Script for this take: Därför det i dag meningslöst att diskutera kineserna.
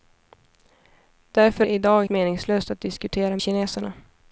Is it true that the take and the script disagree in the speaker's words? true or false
false